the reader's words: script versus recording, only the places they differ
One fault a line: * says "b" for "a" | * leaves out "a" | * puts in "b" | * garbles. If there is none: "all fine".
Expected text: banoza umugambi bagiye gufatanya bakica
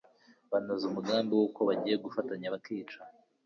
* puts in "wuko"